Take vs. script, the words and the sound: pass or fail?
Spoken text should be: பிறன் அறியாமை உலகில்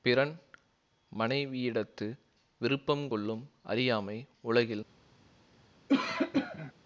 fail